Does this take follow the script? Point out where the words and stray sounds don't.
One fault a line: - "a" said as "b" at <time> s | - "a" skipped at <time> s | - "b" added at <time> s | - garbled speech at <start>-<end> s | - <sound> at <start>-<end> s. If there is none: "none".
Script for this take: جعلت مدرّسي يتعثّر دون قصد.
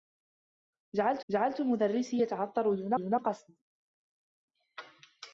- "جعلت" added at 1.3 s
- "دون" added at 2.9 s